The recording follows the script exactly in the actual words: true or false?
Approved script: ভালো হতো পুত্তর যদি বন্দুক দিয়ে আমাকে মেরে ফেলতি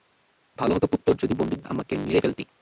false